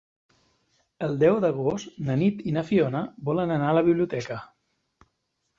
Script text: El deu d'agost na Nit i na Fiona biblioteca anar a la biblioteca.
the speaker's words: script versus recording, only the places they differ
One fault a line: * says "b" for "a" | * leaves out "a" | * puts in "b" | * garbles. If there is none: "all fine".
* says "volen" for "biblioteca"